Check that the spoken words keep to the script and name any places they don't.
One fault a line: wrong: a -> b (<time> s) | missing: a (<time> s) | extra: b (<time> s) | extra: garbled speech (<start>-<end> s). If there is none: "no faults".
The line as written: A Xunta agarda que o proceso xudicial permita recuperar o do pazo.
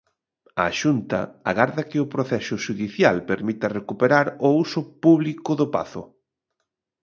extra: uso público (4.6 s)